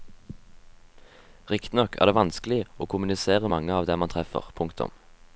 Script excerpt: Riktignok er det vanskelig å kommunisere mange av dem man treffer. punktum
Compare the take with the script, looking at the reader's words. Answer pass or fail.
pass